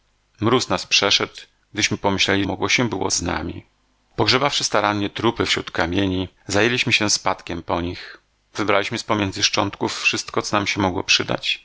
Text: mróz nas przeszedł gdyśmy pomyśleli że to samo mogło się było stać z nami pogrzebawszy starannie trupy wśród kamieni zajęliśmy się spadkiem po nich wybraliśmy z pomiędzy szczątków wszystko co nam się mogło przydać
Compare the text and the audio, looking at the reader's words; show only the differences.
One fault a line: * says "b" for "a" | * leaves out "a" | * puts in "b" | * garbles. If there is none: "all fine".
* leaves out "że to samo"
* leaves out "stać"